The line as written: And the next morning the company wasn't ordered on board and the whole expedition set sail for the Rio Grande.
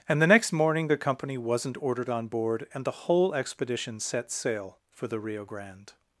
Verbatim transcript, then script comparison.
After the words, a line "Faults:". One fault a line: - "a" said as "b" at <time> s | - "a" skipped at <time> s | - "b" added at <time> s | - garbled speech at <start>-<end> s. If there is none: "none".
And the next morning the company wasn't ordered on board and the whole expedition set sail for the Rio Grande.
Faults:
none